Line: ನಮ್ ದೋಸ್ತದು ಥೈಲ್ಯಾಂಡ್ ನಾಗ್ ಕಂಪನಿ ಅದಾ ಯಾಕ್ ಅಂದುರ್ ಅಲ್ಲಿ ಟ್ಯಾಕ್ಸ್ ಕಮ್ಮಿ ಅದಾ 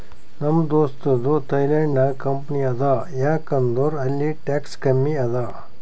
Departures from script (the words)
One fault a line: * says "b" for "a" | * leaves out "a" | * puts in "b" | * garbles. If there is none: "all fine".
all fine